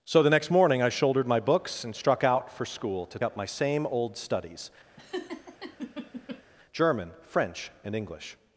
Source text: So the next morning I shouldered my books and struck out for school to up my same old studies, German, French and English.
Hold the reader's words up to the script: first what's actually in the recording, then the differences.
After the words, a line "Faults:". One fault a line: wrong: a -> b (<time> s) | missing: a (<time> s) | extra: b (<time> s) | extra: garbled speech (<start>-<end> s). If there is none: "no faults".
So the next morning I shouldered my books and struck out for school to up my same old studies, German, French and English.
Faults:
no faults